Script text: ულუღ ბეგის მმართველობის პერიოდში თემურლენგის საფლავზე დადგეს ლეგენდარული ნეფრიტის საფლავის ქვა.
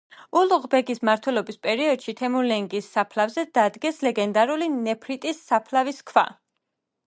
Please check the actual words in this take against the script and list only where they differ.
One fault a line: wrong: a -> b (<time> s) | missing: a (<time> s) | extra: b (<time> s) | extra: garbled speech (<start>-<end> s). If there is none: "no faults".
no faults